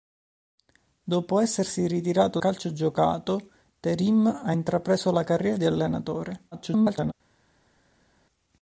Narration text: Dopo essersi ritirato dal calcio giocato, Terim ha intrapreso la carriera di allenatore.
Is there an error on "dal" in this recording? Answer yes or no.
yes